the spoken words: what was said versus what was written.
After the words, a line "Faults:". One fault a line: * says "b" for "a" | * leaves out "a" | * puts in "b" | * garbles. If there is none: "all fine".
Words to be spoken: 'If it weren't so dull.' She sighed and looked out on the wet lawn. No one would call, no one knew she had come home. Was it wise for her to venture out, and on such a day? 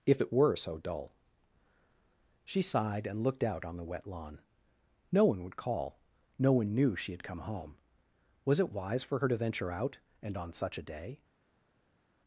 'If it were so dull.' She sighed and looked out on the wet lawn. No one would call, no one knew she had come home. Was it wise for her to venture out, and on such a day?
Faults:
* says "were" for "weren't"